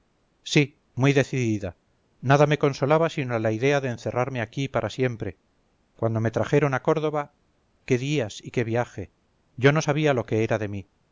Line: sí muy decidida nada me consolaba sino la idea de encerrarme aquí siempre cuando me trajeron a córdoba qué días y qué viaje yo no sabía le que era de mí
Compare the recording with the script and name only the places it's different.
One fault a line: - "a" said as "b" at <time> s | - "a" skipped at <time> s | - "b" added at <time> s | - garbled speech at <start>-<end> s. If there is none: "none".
- "para" added at 4.7 s
- "le" said as "lo" at 10.1 s